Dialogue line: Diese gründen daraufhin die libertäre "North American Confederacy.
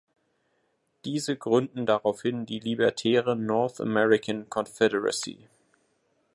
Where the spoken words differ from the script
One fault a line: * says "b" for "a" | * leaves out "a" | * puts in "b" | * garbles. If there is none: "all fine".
all fine